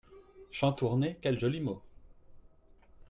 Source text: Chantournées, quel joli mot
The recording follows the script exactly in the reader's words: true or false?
true